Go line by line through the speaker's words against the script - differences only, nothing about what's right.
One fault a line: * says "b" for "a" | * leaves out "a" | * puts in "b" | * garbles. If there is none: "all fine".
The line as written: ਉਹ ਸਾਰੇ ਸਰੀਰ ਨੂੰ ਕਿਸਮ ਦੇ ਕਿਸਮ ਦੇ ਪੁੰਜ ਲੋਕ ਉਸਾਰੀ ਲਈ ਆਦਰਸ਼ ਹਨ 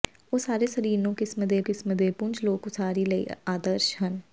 all fine